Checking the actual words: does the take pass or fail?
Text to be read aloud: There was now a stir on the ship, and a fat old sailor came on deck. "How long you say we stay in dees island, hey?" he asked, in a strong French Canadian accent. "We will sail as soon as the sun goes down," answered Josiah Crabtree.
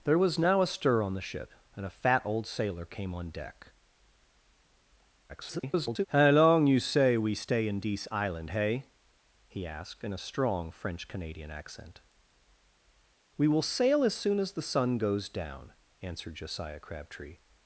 fail